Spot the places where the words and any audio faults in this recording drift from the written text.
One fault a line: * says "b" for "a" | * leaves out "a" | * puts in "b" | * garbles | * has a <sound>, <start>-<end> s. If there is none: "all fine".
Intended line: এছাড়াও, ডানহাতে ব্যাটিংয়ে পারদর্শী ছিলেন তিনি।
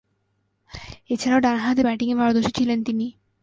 all fine